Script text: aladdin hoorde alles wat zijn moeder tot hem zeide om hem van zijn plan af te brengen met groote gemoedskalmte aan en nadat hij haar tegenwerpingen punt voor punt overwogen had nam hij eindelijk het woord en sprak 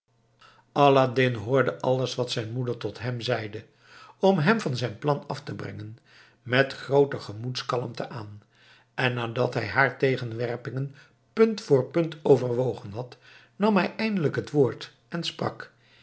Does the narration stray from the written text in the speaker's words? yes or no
no